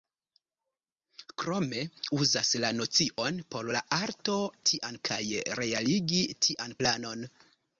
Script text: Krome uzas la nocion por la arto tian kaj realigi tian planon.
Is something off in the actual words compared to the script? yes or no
no